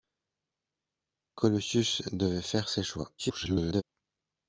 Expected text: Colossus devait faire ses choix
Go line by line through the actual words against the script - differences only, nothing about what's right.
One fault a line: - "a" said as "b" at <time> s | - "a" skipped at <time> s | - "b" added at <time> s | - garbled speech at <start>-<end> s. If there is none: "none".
- garbled speech at 3.2-3.8 s